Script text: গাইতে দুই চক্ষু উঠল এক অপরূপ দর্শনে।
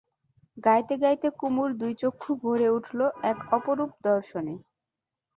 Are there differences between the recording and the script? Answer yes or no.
yes